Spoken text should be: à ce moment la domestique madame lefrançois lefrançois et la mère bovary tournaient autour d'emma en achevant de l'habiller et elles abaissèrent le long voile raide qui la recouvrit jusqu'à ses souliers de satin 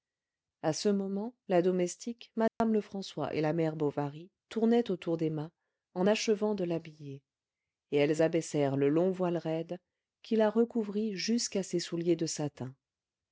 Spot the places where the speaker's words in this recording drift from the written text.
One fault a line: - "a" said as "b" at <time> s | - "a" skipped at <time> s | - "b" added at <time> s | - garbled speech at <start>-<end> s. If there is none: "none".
- "lefrançois" skipped at 3.3 s